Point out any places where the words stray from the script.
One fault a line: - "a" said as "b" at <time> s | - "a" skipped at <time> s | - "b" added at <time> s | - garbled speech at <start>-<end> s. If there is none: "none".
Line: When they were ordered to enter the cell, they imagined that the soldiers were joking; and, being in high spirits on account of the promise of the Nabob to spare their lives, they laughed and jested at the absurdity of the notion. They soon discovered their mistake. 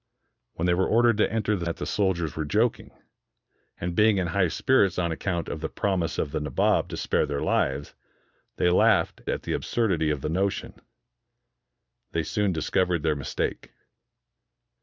- "cell they imagined" skipped at 1.7 s
- "and jested" skipped at 9.2 s